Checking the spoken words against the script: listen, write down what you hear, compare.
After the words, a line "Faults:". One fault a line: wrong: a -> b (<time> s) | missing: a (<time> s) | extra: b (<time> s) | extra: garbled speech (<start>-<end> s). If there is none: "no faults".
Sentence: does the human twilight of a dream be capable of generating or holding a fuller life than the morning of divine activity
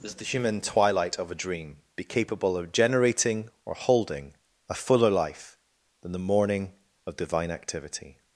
does the human twilight of a dream be capable of generating or holding a fuller life than the morning of divine activity
Faults:
no faults